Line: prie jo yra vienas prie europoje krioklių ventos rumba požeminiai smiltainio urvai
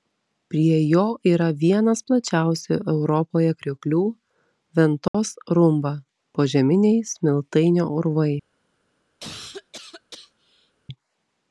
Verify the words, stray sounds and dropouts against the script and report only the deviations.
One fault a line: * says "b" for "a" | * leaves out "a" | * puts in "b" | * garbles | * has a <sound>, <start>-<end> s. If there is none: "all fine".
* says "plačiausių" for "prie"
* has a dropout, 5.1-5.1 s
* has a cough, 9.2-10.7 s